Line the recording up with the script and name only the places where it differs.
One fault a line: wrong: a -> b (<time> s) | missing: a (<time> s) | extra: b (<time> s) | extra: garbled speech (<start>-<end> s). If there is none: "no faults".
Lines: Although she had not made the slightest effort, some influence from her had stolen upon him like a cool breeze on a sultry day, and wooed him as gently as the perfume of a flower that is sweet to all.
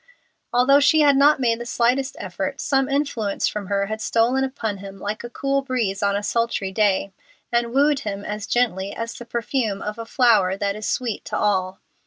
no faults